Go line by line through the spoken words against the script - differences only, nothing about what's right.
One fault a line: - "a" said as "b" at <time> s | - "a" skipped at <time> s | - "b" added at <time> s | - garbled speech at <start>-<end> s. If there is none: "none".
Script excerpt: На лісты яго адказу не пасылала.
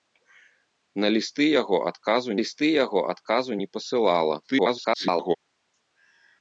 - "лісты яго адказу" added at 2.4 s
- garbled speech at 4.4-5.4 s